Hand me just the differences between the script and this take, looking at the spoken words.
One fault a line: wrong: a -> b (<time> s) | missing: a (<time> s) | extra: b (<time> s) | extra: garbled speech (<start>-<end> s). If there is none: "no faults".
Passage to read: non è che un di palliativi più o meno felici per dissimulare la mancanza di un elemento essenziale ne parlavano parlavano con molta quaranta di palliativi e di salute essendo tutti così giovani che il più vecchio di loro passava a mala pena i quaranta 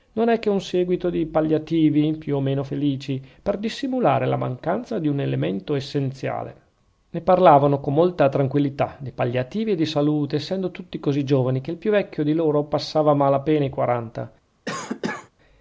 extra: seguito (0.6 s)
missing: parlavano (7.8 s)
wrong: quaranta -> tranquillità (8.3 s)